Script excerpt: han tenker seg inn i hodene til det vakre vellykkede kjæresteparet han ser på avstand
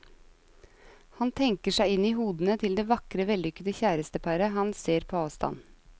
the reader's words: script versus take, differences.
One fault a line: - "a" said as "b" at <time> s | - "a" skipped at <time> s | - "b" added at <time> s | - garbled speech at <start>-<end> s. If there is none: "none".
none